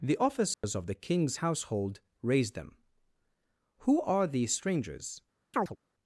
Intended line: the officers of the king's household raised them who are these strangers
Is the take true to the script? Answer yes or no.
yes